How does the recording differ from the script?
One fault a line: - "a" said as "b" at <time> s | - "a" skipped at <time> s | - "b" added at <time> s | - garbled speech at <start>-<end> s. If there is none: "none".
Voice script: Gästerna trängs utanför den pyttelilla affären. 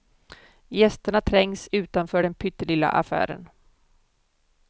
none